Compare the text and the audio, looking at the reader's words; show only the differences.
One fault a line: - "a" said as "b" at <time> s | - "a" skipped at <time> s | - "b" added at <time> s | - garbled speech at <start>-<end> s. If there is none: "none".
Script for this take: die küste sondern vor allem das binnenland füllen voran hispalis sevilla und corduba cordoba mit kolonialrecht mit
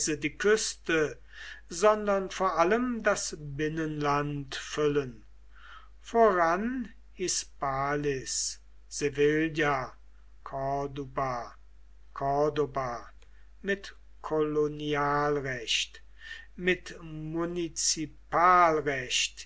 - "und" skipped at 9.9 s